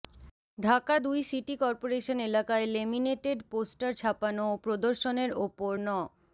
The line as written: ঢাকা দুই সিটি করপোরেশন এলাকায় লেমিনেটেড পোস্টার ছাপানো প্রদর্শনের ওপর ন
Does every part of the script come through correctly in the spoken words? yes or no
no